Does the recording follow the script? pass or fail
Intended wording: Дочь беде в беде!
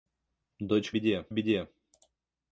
pass